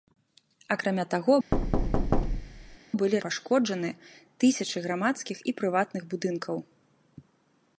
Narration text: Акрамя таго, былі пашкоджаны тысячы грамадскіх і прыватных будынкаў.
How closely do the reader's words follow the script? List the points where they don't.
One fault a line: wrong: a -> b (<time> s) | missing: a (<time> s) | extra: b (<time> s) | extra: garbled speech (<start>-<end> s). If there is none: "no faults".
no faults